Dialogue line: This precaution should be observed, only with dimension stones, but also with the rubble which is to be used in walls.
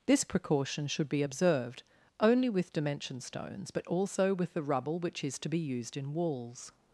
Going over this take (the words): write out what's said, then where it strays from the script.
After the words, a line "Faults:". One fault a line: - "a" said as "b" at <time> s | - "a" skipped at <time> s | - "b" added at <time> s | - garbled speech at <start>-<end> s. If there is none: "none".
This precaution should be observed, only with dimension stones, but also with the rubble which is to be used in walls.
Faults:
none